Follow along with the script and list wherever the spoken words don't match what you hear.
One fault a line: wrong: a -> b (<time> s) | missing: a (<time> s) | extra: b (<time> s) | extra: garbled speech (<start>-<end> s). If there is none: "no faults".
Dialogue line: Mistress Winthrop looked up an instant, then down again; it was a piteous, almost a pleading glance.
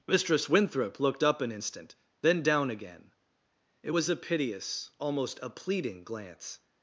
no faults